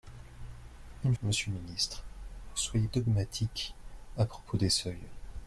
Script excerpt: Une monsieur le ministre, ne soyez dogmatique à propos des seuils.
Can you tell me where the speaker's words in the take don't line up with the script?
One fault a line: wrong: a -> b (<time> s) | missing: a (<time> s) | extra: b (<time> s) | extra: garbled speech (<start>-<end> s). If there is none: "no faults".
no faults